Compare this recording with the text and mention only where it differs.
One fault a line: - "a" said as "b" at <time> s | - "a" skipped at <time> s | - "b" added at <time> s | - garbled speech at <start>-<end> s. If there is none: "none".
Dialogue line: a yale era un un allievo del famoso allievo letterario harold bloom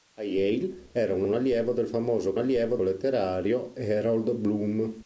none